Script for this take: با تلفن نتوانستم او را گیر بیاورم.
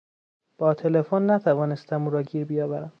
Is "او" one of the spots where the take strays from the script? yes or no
no